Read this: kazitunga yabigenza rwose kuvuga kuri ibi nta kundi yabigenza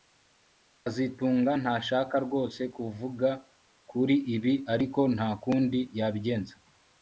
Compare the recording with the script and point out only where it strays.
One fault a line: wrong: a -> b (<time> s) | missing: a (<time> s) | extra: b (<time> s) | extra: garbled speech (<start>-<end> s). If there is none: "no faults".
wrong: yabigenza -> ntashaka (1.6 s)
extra: ariko (4.7 s)